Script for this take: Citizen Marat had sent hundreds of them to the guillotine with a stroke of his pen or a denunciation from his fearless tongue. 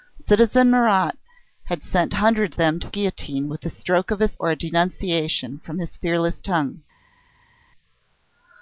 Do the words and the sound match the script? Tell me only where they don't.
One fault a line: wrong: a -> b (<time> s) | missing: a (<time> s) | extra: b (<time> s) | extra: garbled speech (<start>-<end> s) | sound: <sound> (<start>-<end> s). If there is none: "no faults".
missing: of (2.6 s)
missing: the (2.9 s)
missing: pen (4.4 s)